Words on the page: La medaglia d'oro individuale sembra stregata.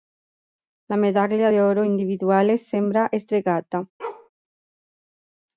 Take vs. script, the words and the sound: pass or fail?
fail